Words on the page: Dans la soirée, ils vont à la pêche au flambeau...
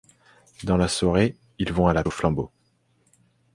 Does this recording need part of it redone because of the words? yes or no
yes